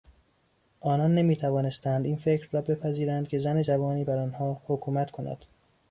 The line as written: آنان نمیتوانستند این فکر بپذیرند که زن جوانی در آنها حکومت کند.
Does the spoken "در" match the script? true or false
false